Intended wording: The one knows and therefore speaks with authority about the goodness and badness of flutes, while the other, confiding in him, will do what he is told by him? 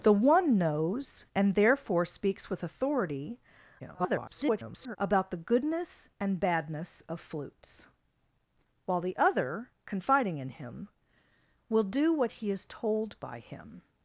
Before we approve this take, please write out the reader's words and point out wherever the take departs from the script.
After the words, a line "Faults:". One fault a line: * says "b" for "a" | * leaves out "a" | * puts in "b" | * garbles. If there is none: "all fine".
The one knows and therefore speaks with authority [garbled] about the goodness and badness of flutes, while the other, confiding in him, will do what he is told by him?
Faults:
* garbles